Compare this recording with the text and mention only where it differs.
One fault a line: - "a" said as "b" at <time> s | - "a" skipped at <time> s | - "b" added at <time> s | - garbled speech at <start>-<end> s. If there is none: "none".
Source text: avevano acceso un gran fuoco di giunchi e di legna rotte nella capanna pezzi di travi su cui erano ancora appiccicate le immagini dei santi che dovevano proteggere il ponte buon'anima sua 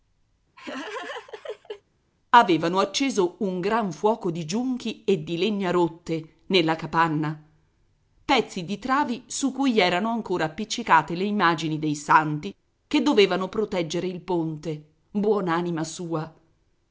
none